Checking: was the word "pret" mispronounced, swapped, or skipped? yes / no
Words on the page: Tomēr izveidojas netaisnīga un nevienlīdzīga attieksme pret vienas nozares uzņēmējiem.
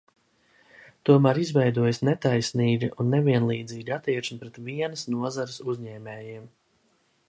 no